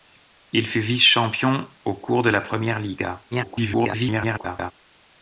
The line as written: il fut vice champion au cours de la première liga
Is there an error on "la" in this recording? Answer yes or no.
no